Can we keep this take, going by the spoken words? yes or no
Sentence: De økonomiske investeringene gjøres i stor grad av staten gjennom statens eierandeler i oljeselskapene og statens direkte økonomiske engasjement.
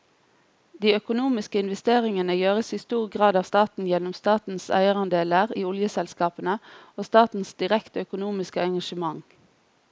yes